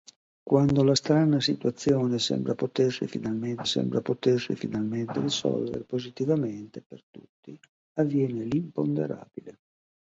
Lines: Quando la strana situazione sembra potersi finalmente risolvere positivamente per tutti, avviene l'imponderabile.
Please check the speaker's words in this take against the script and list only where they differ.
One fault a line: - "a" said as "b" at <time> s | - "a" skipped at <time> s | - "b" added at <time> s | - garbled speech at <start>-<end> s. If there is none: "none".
- "sembra potersi finalmente" added at 3.6 s